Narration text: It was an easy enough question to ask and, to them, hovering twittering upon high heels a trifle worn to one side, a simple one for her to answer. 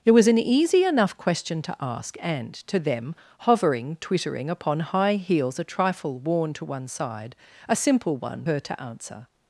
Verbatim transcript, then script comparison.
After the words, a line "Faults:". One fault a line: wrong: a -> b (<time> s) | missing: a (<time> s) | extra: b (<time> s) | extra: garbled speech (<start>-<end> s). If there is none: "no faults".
It was an easy enough question to ask and, to them, hovering twittering upon high heels a trifle worn to one side, a simple one her to answer.
Faults:
missing: for (8.5 s)